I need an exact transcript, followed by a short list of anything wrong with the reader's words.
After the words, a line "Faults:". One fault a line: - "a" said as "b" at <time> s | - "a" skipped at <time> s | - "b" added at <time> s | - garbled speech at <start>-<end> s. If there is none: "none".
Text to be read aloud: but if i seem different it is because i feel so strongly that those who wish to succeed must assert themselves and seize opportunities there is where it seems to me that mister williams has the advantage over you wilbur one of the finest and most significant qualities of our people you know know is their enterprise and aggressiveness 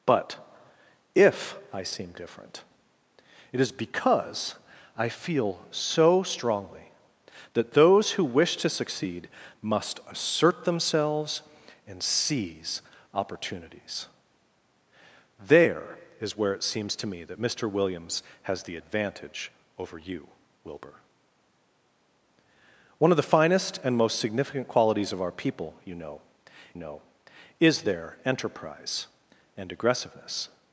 but if i seem different it is because i feel so strongly that those who wish to succeed must assert themselves and seize opportunities there is where it seems to me that mister williams has the advantage over you wilbur one of the finest and most significant qualities of our people you know know is their enterprise and aggressiveness
Faults:
none